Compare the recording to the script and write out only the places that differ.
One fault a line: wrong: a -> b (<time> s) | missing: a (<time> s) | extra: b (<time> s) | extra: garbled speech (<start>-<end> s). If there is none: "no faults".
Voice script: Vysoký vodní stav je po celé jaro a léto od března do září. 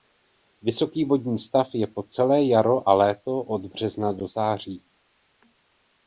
no faults